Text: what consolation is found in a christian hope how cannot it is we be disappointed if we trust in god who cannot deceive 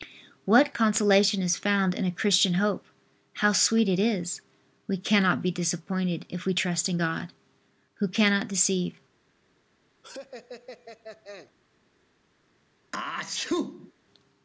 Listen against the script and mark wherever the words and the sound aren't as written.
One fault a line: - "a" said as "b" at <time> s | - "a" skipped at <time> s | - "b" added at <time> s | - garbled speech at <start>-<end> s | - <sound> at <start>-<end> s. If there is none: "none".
- "cannot" said as "sweet" at 3.5 s
- "cannot" added at 5.0 s
- laugh at 10.0-11.5 s
- sneeze at 12.9-13.9 s